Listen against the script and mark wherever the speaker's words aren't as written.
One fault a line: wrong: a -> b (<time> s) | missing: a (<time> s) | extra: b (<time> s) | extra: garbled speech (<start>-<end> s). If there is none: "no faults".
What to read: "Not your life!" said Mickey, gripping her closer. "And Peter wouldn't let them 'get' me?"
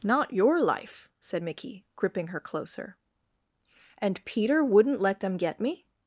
no faults